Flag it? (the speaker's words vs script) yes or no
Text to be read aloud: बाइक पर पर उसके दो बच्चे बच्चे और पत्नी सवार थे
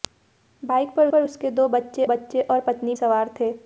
no